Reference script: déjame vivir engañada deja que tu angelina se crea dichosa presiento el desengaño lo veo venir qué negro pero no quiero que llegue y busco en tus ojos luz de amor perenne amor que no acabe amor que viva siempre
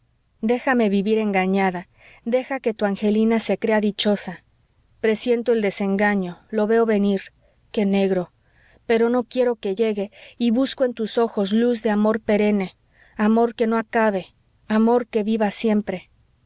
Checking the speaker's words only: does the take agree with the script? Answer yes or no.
yes